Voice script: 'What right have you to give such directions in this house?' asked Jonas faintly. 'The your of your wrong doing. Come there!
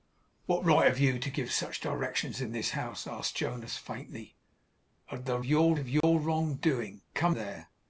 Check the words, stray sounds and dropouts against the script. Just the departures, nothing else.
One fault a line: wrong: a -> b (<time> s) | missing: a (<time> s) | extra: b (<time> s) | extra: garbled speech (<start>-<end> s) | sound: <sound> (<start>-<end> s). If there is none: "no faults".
sound: dropout (6.0-6.0 s)